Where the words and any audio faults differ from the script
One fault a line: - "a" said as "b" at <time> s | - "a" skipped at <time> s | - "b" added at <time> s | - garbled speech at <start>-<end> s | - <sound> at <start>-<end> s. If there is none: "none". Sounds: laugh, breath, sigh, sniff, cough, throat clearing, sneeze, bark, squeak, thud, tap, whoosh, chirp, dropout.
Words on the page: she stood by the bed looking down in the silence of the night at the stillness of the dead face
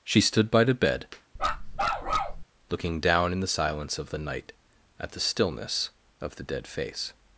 - bark at 1.4-2.4 s